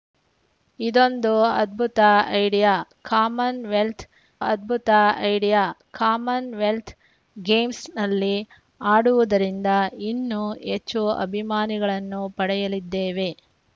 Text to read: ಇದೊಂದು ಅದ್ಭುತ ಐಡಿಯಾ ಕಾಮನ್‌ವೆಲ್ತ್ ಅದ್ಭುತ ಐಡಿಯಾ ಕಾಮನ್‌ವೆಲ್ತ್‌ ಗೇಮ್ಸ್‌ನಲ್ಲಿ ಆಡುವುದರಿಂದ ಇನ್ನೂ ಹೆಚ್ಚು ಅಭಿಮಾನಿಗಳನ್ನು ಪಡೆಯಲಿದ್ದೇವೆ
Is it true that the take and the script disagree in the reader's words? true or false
false